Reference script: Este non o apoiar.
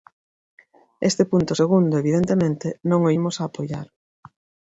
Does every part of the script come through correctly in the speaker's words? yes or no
no